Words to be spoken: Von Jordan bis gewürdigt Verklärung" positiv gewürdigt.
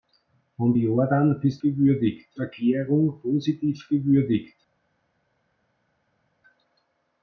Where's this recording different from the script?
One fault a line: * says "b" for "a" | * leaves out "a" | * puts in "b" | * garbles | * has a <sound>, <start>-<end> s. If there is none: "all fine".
all fine